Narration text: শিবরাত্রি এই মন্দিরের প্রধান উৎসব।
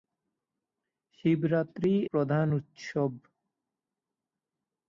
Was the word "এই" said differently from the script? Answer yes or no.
yes